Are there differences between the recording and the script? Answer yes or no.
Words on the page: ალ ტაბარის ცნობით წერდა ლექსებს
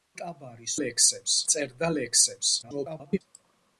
yes